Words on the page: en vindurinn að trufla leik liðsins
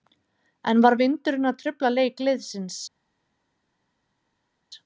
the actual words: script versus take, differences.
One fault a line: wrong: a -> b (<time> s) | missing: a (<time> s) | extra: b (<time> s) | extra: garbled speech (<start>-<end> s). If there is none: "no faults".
extra: var (0.8 s)